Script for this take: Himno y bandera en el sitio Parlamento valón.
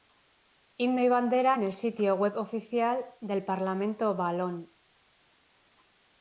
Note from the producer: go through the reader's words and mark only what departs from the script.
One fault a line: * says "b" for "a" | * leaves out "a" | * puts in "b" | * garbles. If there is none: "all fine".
* puts in "web oficial del"